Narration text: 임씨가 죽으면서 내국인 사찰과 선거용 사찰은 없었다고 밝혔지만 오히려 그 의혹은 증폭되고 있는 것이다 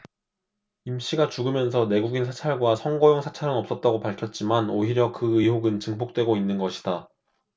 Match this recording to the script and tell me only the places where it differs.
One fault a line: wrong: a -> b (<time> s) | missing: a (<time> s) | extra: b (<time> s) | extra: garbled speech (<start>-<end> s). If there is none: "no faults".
no faults